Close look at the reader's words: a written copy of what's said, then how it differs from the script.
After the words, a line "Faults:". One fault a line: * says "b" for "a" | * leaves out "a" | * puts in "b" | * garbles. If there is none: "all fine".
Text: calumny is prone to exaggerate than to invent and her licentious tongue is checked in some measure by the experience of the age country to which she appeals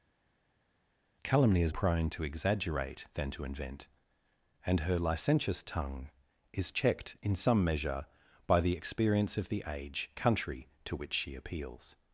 calumny is prone to exaggerate than to invent and her licentious tongue is checked in some measure by the experience of the age country to which she appeals
Faults:
all fine